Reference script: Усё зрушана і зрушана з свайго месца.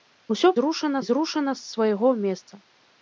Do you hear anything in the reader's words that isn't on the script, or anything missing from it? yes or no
no